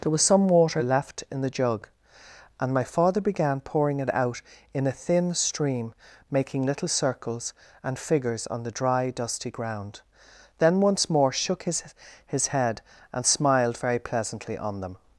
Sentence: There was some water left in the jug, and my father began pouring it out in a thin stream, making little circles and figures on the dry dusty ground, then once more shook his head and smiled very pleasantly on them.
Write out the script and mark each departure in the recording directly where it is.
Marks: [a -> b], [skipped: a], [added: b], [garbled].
There was some water left in the jug, and my father began pouring it out in a thin stream, making little circles and figures on the dry dusty ground, then once more shook his [added: his] head and smiled very pleasantly on them.